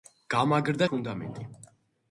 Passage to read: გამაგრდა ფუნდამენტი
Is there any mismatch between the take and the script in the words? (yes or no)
no